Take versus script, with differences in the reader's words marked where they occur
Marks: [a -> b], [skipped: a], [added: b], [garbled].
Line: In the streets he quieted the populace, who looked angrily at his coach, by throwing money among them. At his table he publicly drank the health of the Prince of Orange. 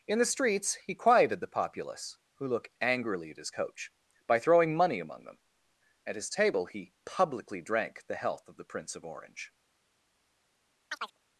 In the streets he quieted the populace, who [looked -> look] angrily at his coach, by throwing money among them. At his table he publicly drank the health of the Prince of Orange.